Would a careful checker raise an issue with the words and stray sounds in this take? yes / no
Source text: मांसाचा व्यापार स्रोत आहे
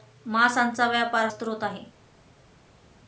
no